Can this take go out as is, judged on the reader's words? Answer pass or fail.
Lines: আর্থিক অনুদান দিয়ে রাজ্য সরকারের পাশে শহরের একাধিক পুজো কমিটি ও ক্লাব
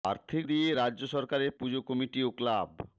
fail